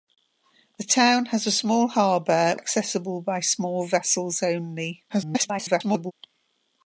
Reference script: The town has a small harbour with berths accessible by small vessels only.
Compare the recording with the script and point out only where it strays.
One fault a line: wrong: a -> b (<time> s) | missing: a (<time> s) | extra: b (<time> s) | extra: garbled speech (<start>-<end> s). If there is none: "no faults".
missing: with berths (2.6 s)
extra: garbled speech (5.1-6.1 s)